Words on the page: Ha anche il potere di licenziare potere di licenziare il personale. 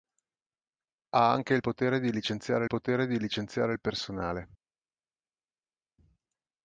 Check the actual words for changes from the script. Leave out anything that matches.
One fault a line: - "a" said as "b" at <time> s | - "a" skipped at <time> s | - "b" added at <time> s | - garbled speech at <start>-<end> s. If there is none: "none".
none